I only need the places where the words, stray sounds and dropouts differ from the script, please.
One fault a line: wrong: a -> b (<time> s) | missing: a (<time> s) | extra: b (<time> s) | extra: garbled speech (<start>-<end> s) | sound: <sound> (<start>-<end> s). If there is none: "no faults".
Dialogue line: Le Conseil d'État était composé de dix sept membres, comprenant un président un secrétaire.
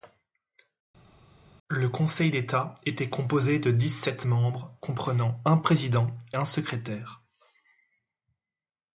no faults